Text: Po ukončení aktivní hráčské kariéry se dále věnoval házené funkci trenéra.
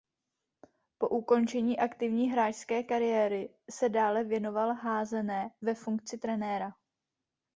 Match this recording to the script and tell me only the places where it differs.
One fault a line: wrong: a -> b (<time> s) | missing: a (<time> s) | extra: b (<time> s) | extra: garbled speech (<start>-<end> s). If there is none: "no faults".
extra: ve (5.6 s)